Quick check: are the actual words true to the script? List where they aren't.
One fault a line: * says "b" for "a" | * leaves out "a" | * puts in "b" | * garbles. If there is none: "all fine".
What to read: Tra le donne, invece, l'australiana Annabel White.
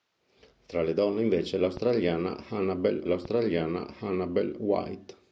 * puts in "l'australiana Annabel"